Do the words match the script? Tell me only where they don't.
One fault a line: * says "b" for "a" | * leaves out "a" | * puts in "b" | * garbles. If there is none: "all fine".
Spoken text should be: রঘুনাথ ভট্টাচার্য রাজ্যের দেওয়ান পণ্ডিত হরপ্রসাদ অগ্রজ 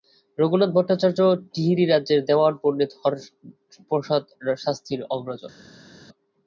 * puts in "টিহিরী"
* puts in "শাস্ত্রীর"